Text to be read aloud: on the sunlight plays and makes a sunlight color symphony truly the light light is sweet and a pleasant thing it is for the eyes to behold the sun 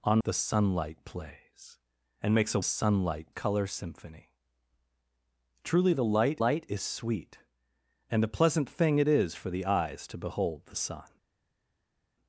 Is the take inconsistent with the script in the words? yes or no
no